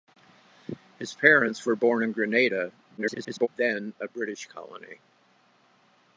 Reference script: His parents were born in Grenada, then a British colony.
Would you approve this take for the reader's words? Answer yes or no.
no